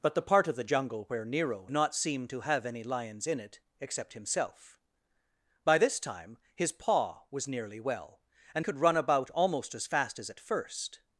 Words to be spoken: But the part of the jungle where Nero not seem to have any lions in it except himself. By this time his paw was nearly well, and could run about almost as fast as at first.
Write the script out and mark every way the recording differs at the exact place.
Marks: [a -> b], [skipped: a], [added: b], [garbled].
But the part of the jungle where Nero not seem to have any lions in it except himself. By this time his paw was nearly well, and could run about almost as fast as at first.